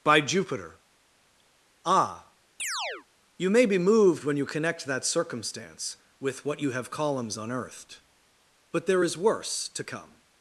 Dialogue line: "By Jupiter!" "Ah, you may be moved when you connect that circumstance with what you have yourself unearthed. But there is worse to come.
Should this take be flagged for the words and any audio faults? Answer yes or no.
yes